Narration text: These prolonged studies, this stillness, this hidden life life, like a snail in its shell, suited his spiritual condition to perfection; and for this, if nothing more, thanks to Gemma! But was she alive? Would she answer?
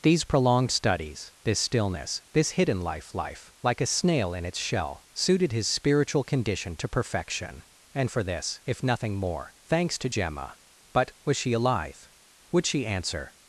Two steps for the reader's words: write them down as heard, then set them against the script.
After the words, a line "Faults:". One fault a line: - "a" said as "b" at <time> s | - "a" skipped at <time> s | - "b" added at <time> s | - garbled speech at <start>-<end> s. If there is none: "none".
These prolonged studies, this stillness, this hidden life life, like a snail in its shell, suited his spiritual condition to perfection; and for this, if nothing more, thanks to Gemma! But was she alive? Would she answer?
Faults:
none